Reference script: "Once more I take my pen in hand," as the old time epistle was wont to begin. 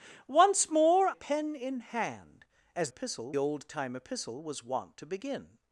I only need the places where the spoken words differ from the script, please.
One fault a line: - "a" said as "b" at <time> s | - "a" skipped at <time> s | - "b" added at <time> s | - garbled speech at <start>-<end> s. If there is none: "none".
- "I take my" skipped at 1.1 s
- "the" said as "epistle" at 2.9 s